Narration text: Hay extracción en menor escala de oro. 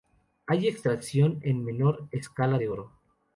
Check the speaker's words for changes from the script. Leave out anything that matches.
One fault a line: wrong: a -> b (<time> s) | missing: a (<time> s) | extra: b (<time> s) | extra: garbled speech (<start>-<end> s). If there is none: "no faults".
no faults